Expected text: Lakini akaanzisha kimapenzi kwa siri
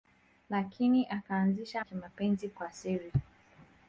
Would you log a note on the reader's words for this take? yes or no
no